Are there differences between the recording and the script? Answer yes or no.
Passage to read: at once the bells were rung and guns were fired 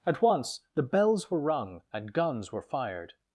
no